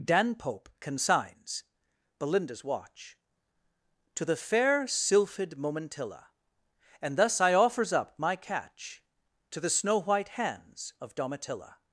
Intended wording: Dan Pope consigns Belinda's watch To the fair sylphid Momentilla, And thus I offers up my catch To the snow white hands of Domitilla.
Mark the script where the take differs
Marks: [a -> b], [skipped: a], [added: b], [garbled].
Dan Pope consigns Belinda's watch To the fair sylphid Momentilla, And thus I offers up my catch To the snow white hands of Domitilla.